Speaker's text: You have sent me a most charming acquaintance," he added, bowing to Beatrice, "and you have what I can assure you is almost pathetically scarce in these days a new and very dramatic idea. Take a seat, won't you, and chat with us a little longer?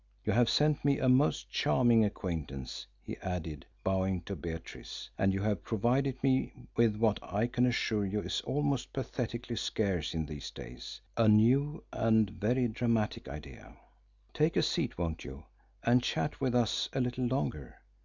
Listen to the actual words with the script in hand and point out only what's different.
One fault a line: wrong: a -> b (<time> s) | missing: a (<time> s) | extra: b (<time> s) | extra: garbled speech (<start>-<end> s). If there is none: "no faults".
extra: provided me with (5.6 s)